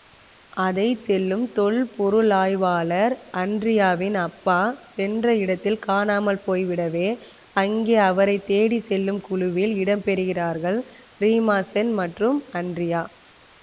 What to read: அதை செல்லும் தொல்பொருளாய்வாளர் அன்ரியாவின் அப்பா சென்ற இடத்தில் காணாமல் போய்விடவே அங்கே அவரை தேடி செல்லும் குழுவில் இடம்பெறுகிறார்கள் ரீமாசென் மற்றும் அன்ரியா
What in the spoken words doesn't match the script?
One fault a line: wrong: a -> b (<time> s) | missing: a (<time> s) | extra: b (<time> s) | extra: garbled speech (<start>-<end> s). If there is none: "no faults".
no faults